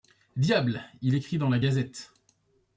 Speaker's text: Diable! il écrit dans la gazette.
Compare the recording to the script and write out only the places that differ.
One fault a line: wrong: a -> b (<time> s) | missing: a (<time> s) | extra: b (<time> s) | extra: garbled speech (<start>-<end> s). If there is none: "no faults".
no faults